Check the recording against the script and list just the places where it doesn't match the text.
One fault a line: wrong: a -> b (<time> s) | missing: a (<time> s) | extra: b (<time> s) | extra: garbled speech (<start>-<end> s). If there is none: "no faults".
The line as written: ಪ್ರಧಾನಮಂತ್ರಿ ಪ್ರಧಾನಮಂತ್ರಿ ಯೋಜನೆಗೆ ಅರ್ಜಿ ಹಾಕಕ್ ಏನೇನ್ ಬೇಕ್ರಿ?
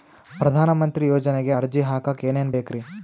missing: ಪ್ರಧಾನಮಂತ್ರಿ (1.1 s)